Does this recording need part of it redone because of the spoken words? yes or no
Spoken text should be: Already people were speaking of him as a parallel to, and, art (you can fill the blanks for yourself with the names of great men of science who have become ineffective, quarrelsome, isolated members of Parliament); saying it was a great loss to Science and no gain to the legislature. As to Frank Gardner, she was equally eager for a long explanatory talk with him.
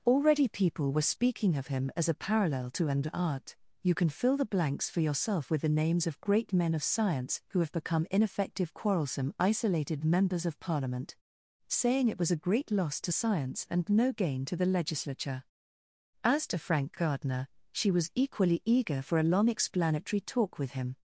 no